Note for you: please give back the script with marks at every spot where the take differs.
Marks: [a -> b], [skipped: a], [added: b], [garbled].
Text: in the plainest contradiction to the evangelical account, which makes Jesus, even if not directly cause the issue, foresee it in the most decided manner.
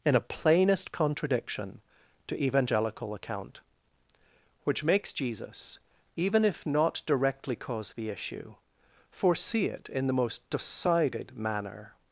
in [the -> a] plainest contradiction to [skipped: the] evangelical account, which makes Jesus, even if not directly cause the issue, foresee it in the most decided manner.